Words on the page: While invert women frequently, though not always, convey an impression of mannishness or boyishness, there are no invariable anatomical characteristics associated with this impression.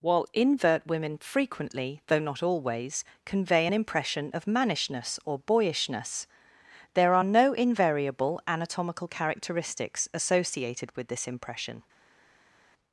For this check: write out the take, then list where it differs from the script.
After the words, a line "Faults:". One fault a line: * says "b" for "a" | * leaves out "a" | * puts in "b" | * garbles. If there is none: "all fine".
While invert women frequently, though not always, convey an impression of mannishness or boyishness, there are no invariable anatomical characteristics associated with this impression.
Faults:
all fine